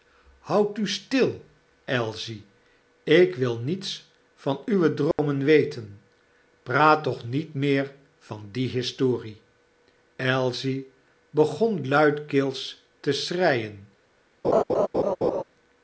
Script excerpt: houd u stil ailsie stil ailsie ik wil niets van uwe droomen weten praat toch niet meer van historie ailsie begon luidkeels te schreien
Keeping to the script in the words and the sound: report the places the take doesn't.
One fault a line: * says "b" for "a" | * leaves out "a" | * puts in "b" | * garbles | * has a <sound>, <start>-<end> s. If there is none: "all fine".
* leaves out "stil ailsie"
* has a dropout, 5.1-5.2 s
* puts in "die"
* has a laugh, 14.4-15.4 s